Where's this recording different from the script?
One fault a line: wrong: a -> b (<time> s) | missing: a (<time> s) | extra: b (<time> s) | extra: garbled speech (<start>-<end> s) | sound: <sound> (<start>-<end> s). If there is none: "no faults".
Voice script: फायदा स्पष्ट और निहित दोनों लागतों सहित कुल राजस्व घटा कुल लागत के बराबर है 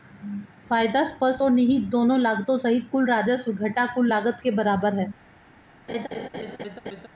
sound: laugh (5.9-7.1 s)